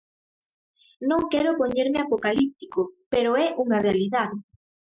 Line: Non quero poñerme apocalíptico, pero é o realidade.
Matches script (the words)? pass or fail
fail